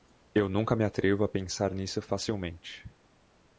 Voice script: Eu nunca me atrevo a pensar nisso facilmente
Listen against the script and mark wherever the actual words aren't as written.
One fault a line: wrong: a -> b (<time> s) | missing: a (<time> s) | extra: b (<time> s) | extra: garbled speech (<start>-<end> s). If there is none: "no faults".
no faults